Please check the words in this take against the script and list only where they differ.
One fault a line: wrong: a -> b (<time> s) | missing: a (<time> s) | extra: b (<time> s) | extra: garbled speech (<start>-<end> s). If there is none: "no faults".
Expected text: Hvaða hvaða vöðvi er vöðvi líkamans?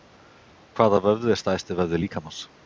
missing: hvaða (1.0 s)
extra: stærsti (1.4 s)